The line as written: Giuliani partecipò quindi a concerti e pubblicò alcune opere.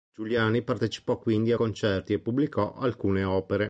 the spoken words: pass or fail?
pass